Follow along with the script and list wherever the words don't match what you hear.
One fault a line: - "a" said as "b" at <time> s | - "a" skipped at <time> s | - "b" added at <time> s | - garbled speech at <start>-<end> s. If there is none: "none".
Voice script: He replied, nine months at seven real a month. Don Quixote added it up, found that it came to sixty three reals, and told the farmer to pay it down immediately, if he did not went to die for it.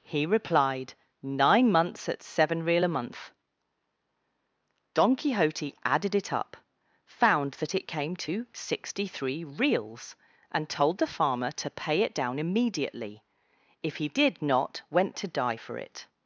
none